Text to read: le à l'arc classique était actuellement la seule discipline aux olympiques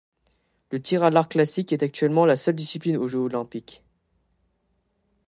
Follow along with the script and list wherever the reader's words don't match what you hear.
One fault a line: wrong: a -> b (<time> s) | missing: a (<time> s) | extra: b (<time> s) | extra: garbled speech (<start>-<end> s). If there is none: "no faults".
extra: tir (0.8 s)
wrong: était -> est (1.7 s)
extra: jeux (3.1 s)